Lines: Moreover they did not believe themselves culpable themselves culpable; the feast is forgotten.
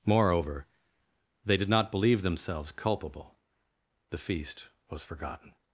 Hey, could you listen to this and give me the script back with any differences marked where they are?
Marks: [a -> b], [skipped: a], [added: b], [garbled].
Moreover they did not believe themselves culpable [skipped: themselves culpable;] the feast [is -> was] forgotten.